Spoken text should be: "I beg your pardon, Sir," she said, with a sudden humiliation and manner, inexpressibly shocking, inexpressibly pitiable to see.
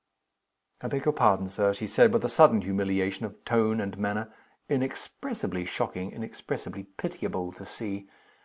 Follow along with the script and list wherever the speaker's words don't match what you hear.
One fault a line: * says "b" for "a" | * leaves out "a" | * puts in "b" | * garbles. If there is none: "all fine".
* puts in "of tone"